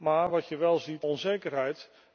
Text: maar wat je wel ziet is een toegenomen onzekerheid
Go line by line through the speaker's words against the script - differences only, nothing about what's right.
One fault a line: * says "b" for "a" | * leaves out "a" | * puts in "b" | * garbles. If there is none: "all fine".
* leaves out "is een toegenomen"